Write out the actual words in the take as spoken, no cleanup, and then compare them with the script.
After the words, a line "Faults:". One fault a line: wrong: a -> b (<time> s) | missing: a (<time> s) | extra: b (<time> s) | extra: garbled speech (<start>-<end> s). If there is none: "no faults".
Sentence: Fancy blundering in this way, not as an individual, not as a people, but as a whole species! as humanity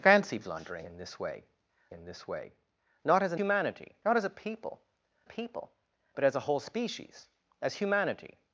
Fancy blundering in this way in this way, not as an humanity, not as a people people, but as a whole species! as humanity
Faults:
extra: in this way (1.9 s)
wrong: individual -> humanity (3.3 s)
extra: people (5.2 s)